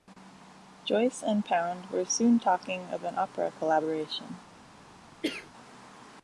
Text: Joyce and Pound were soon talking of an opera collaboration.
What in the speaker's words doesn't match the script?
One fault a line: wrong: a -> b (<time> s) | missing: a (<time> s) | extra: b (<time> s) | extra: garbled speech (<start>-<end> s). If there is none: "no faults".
no faults